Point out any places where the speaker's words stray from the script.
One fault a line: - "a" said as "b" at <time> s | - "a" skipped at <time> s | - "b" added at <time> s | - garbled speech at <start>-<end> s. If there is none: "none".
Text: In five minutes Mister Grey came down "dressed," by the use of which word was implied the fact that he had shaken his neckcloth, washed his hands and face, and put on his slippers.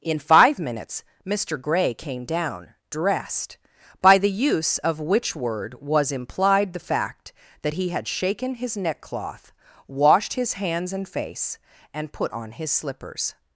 none